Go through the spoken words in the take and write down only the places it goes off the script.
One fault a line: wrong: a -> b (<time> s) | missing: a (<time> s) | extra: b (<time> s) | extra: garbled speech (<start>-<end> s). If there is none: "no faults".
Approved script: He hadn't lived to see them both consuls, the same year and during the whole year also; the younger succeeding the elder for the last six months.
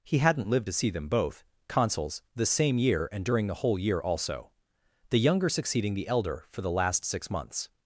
no faults